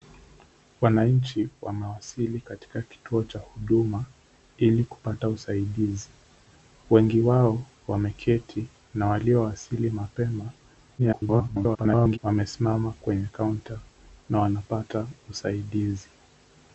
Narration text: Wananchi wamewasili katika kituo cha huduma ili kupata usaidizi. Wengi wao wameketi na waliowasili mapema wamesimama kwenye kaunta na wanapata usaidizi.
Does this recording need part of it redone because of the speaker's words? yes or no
yes